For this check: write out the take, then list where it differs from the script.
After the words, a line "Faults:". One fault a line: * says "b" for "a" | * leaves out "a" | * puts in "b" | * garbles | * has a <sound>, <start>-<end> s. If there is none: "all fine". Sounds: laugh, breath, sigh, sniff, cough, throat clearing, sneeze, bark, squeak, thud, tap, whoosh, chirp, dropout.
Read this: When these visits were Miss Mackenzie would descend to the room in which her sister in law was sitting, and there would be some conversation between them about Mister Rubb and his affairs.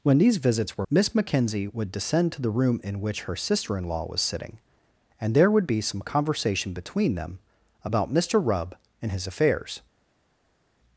When these visits were Miss Mackenzie would descend to the room in which her sister in law was sitting, and there would be some conversation between them about Mister Rubb and his affairs.
Faults:
all fine